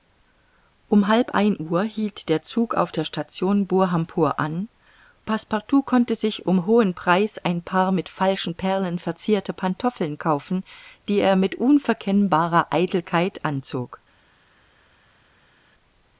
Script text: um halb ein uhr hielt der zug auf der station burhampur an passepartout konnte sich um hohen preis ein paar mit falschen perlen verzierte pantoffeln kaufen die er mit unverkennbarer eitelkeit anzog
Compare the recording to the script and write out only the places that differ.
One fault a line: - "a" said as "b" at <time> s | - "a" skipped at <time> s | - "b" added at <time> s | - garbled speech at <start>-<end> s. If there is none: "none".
none